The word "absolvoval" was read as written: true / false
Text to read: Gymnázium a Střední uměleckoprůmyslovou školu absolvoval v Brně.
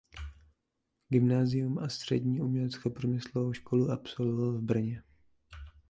true